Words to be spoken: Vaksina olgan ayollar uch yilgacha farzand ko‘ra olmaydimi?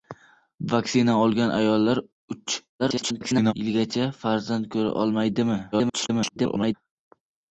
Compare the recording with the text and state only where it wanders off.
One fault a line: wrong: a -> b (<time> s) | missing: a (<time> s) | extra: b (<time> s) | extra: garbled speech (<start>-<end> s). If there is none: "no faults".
extra: garbled speech (2.8-3.5 s)
extra: garbled speech (5.7-6.7 s)